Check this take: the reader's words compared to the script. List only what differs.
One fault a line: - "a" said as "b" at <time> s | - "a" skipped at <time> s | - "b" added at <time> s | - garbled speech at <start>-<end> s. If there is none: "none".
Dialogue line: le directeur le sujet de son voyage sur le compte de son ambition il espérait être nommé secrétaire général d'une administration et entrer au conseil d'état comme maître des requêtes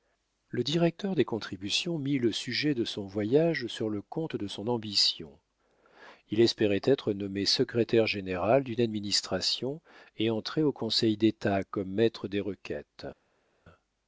- "des contributions mit" added at 1.1 s